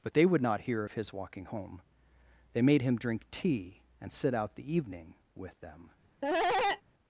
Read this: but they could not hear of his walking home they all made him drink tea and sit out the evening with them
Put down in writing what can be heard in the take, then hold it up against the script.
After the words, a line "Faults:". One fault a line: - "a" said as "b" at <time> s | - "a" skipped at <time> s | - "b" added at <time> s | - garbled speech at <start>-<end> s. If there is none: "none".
but they would not hear of his walking home they made him drink tea and sit out the evening with them
Faults:
- "could" said as "would" at 0.2 s
- "all" skipped at 2.6 s